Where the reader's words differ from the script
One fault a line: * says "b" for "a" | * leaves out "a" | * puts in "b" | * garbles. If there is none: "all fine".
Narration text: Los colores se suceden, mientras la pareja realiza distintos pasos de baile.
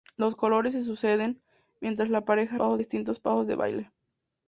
* says "pasos" for "realiza"